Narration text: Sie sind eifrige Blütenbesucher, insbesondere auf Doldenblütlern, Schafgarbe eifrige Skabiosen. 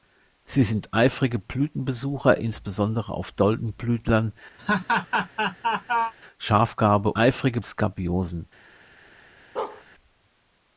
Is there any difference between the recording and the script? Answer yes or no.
no